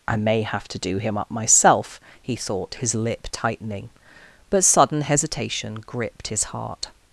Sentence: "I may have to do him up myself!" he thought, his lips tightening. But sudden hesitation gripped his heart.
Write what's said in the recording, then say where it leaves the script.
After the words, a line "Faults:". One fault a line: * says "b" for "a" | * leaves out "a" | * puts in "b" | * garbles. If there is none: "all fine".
"I may have to do him up myself!" he thought, his lip tightening. But sudden hesitation gripped his heart.
Faults:
* says "lip" for "lips"